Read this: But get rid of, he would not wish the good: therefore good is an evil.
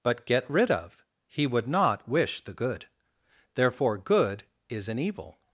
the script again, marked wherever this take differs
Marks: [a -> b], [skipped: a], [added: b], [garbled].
But get rid of, he would not wish the good: therefore good is an evil.